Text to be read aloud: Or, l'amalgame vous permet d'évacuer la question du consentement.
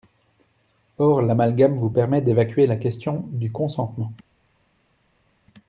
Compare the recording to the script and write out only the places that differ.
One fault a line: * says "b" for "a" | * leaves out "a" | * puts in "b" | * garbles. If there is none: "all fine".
all fine